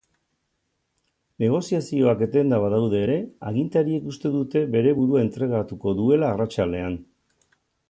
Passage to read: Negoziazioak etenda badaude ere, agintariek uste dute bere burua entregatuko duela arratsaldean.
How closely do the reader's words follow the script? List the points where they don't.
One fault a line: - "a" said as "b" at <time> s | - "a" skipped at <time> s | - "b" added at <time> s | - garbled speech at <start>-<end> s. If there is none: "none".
none